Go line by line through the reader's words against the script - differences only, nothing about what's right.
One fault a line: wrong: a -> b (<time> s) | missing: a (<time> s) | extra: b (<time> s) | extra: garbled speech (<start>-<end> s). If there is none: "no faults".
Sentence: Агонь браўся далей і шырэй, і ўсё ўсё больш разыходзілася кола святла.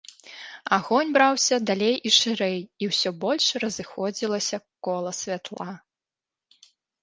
missing: ўсё (3.1 s)